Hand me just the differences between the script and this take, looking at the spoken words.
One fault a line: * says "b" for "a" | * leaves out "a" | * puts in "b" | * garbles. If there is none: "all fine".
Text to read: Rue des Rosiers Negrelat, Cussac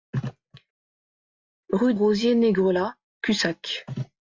* leaves out "des"